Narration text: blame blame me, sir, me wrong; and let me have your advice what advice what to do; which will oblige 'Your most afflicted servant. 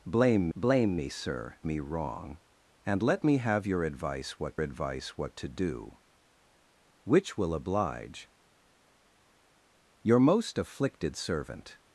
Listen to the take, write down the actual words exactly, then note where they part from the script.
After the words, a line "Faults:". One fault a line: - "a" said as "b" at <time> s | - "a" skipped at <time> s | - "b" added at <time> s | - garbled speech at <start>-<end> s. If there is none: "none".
blame blame me, sir, me wrong; and let me have your advice what advice what to do; which will oblige 'Your most afflicted servant.
Faults:
none